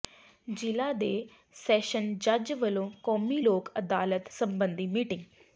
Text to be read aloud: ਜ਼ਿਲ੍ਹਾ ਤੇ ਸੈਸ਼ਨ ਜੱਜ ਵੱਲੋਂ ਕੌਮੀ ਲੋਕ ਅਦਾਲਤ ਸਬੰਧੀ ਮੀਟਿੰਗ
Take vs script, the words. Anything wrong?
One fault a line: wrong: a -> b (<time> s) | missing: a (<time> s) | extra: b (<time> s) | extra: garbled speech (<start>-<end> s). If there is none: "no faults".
no faults